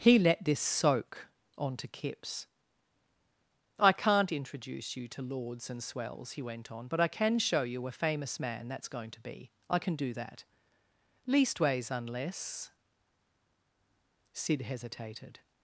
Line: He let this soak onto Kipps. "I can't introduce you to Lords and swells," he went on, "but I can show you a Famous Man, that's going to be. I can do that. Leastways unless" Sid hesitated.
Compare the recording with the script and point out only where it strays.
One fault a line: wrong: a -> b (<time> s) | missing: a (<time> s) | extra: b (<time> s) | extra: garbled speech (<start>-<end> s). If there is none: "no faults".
no faults